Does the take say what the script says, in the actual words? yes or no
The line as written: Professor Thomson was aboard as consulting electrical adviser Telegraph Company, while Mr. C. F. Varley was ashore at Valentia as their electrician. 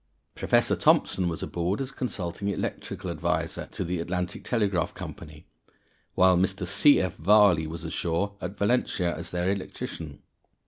no